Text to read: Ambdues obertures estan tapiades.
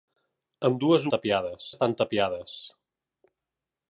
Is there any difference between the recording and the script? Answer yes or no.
yes